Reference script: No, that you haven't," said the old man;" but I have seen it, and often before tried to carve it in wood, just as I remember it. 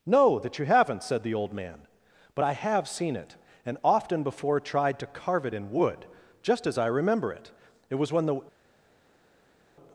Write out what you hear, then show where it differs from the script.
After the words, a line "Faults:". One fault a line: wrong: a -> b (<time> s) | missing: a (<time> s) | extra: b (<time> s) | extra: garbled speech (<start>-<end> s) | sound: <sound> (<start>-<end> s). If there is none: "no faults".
No, that you haven't," said the old man;" but I have seen it, and often before tried to carve it in wood, just as I remember it. It was when the
Faults:
extra: It was when the (7.9 s)